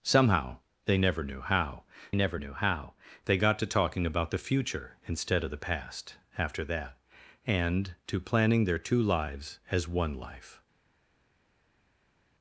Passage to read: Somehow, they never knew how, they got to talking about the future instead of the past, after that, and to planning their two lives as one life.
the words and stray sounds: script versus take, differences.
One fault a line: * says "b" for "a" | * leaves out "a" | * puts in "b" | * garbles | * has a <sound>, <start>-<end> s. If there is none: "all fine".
* puts in "never knew how"